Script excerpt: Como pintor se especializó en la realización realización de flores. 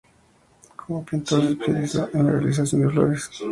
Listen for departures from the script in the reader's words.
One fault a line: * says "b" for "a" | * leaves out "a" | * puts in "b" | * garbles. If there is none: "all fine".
* leaves out "realización"